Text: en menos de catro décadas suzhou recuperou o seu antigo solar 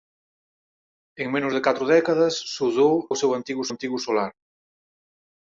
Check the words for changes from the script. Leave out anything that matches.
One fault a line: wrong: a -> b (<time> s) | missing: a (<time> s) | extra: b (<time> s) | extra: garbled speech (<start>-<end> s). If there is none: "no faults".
missing: recuperou (3.0 s)
extra: antigo (3.7 s)